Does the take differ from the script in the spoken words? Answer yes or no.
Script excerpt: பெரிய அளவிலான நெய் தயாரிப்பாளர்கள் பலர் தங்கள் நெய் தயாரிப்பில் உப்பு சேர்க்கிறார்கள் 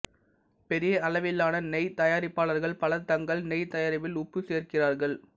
no